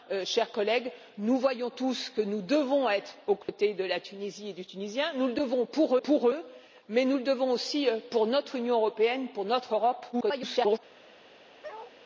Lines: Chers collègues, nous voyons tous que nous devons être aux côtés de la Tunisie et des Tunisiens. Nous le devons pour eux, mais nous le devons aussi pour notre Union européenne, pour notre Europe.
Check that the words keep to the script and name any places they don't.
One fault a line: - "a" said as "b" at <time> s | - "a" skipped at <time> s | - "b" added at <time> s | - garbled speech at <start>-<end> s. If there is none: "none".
- "pour" added at 6.0 s
- garbled speech at 10.1-10.8 s